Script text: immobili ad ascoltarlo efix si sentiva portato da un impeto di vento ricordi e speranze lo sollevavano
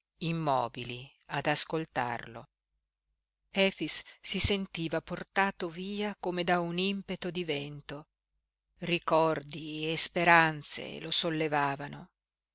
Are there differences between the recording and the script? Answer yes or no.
yes